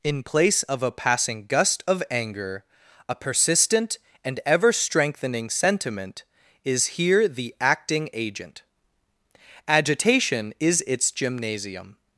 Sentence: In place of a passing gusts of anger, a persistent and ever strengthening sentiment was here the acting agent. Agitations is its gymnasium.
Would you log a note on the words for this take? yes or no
yes